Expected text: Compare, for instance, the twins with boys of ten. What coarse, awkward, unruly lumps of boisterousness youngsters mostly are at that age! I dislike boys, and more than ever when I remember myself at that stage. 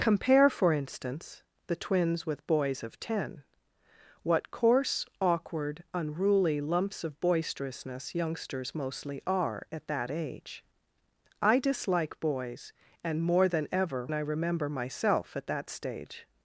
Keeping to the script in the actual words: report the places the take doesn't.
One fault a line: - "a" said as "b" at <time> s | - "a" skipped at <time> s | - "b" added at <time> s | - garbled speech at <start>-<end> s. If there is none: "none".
- "when" skipped at 14.1 s